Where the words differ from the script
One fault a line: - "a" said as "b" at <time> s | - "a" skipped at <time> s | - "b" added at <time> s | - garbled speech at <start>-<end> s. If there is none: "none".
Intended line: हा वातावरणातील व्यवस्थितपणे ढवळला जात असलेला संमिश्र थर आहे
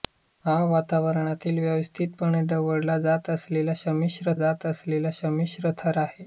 - "जात असलेला संमिश्र" added at 4.3 s